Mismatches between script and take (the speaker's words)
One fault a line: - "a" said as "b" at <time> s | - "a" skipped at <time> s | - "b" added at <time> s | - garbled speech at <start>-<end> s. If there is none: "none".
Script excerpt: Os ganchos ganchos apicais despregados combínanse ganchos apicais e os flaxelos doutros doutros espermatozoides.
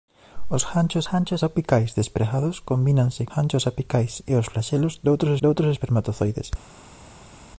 none